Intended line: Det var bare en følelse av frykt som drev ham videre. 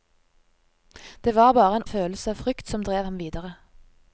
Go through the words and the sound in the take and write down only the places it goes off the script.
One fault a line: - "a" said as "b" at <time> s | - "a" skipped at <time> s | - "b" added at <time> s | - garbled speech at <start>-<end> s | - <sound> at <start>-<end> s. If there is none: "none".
none